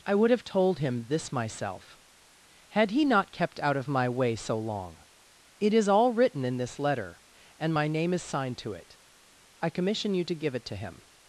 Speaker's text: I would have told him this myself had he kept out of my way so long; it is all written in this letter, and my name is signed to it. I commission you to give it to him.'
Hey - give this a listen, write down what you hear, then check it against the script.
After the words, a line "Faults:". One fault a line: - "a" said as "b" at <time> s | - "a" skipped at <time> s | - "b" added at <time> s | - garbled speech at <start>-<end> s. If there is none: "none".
I would have told him this myself had he not kept out of my way so long; it is all written in this letter, and my name is signed to it. I commission you to give it to him.'
Faults:
- "not" added at 3.0 s